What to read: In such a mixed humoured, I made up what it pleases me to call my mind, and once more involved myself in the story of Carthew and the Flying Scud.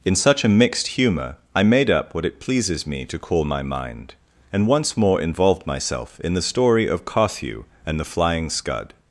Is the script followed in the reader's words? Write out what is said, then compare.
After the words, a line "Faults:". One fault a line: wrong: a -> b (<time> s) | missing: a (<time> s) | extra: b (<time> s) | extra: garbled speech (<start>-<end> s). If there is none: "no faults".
In such a mixed humour, I made up what it pleases me to call my mind, and once more involved myself in the story of Carthew and the Flying Scud.
Faults:
wrong: humoured -> humour (0.9 s)